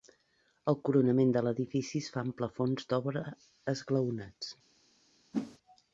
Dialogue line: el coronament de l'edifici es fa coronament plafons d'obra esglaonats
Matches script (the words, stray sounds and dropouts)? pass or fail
fail